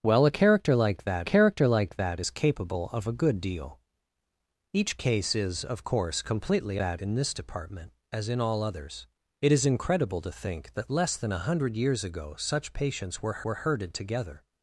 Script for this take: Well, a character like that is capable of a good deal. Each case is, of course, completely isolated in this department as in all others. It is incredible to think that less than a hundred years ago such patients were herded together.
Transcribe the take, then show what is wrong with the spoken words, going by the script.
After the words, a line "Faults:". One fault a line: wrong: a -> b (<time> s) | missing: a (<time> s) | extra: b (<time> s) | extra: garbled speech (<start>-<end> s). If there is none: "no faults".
Well, a character like that character like that is capable of a good deal. Each case is, of course, completely that in this department as in all others. It is incredible to think that less than a hundred years ago such patients were were herded together.
Faults:
extra: character like that (1.2 s)
wrong: isolated -> that (6.8 s)
extra: were (13.4 s)